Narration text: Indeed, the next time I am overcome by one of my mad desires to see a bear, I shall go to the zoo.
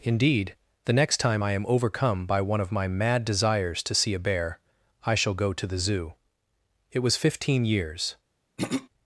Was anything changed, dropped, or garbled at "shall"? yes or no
no